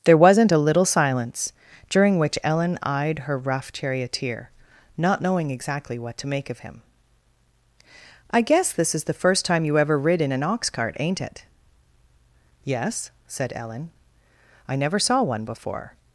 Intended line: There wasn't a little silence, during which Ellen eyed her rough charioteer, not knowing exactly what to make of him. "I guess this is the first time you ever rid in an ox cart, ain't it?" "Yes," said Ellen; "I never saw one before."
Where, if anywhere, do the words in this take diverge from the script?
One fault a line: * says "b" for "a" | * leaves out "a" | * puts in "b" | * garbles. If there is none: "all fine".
all fine